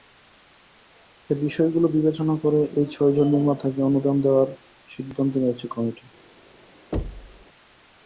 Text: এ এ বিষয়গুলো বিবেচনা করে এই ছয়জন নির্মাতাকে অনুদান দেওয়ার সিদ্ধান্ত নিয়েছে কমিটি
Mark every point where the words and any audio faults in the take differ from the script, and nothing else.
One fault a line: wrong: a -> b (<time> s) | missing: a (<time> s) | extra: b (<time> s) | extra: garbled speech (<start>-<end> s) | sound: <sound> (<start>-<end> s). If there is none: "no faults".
missing: এ (1.4 s)
sound: thud (6.9-7.5 s)